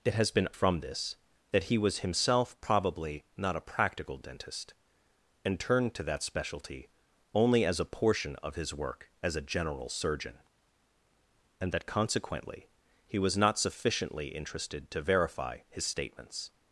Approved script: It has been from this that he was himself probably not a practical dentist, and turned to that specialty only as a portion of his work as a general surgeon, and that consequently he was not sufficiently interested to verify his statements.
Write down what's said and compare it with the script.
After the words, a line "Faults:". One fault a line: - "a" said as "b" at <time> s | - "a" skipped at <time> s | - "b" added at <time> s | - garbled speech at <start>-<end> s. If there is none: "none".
It has been from this that he was himself probably not a practical dentist, and turned to that specialty only as a portion of his work as a general surgeon, and that consequently he was not sufficiently interested to verify his statements.
Faults:
none